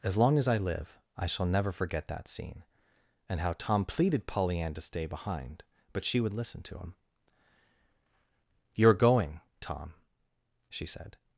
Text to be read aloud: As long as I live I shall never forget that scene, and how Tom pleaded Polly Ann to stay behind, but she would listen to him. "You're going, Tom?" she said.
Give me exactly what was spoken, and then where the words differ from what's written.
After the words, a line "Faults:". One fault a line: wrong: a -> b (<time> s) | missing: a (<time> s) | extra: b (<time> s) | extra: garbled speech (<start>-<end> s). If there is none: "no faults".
As long as I live I shall never forget that scene, and how Tom pleaded Polly Ann to stay behind, but she would listen to him. "You're going, Tom?" she said.
Faults:
no faults